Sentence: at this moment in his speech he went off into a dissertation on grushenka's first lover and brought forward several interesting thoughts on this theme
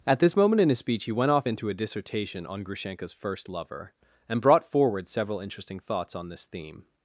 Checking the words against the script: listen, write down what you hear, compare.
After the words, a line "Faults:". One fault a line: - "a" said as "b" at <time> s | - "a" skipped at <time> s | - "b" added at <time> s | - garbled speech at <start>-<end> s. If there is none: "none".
at this moment in his speech he went off into a dissertation on grushenka's first lover and brought forward several interesting thoughts on this theme
Faults:
none